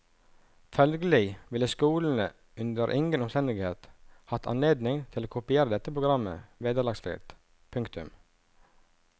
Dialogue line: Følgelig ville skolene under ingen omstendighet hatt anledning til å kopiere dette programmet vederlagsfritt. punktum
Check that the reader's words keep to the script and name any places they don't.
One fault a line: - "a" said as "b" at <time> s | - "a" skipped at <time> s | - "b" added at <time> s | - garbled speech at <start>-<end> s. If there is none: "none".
none